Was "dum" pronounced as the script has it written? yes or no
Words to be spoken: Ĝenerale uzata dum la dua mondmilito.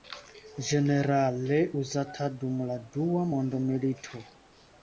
yes